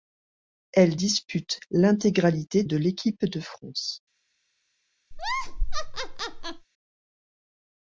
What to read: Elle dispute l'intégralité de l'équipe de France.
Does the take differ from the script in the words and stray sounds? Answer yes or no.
yes